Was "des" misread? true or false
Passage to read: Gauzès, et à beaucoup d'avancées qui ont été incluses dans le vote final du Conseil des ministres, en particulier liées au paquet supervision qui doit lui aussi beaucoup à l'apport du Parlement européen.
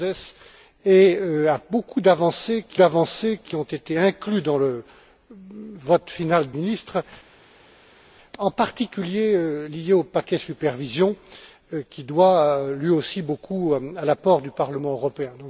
true